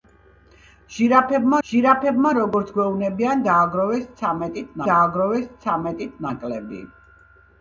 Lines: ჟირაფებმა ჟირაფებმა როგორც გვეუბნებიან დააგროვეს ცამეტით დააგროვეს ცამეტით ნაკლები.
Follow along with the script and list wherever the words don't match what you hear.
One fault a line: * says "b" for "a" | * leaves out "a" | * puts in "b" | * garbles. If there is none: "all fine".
all fine